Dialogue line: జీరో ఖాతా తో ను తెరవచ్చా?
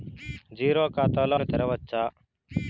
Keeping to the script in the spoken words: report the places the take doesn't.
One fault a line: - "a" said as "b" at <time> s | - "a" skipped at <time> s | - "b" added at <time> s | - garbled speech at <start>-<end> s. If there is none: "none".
none